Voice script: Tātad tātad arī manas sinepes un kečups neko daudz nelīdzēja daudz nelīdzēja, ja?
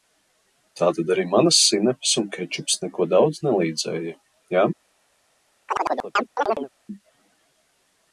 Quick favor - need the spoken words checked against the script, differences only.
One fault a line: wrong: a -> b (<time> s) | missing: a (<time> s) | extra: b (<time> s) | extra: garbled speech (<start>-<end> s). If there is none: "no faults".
missing: tātad (1.1 s)
missing: daudz nelīdzēja (4.2 s)